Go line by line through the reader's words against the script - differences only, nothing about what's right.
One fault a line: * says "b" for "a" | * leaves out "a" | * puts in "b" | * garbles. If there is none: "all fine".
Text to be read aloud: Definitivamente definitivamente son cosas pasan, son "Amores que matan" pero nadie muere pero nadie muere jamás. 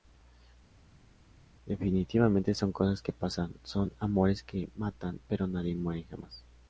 * leaves out "definitivamente"
* puts in "que"
* leaves out "pero nadie muere"